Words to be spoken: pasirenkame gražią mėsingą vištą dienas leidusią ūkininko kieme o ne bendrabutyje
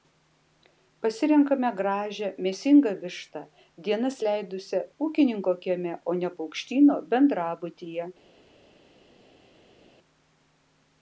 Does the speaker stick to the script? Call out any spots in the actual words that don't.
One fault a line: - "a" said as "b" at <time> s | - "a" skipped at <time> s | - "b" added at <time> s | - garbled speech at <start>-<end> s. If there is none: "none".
- "paukštyno" added at 6.4 s